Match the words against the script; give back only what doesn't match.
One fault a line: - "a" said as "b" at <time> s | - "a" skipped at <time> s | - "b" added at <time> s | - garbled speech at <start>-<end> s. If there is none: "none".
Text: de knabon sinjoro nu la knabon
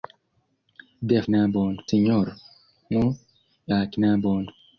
none